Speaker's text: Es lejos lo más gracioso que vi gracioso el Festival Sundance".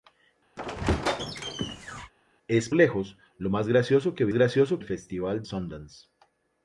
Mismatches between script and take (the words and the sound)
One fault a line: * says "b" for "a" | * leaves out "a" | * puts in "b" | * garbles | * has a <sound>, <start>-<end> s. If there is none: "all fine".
* has a squeak, 0.6-2.1 s